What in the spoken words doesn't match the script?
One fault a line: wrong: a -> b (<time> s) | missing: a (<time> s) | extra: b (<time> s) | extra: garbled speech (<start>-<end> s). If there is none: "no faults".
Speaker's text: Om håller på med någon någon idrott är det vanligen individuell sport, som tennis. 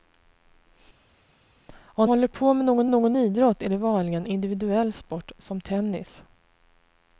no faults